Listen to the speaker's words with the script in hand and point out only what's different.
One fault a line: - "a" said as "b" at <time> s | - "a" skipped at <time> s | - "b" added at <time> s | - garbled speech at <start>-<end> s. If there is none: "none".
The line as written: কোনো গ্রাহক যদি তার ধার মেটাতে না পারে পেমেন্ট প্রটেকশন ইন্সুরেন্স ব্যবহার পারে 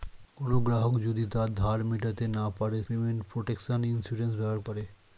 none